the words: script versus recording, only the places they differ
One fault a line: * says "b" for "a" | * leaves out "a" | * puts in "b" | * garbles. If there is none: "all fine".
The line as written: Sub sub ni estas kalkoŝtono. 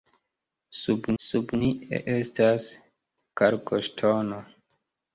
all fine